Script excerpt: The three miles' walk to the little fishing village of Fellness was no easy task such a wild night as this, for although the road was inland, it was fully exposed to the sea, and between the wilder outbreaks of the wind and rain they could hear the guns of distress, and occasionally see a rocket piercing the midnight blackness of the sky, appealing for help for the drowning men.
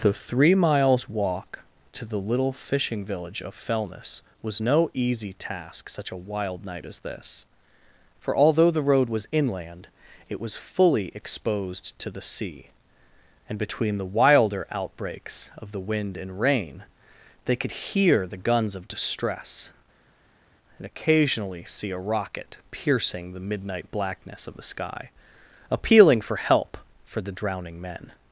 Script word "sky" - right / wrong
right